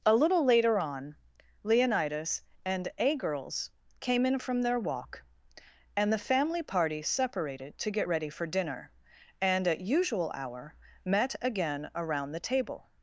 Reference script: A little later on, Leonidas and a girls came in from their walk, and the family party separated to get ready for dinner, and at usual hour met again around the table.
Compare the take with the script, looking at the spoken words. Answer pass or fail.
pass